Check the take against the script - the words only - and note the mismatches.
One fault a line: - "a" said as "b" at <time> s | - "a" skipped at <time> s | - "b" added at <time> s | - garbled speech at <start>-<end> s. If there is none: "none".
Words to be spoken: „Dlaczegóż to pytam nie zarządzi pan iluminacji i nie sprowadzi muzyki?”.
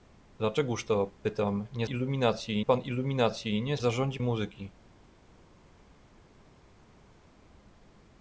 - "zarządzi" said as "iluminacji" at 1.8 s
- "sprowadzi" said as "zarządzi" at 3.8 s